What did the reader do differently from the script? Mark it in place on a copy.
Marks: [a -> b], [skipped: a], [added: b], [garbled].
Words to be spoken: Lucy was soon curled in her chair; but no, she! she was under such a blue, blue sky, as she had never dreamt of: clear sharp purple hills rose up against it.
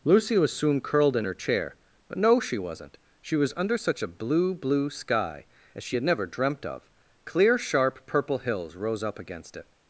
Lucy was soon curled in her chair; but no, she! [added: wasn't] she was under such a blue, blue sky, as she had never dreamt of: clear sharp purple hills rose up against it.